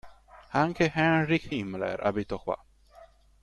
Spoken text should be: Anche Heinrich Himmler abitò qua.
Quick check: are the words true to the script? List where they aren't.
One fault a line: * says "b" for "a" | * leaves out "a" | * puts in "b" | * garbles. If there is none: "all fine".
all fine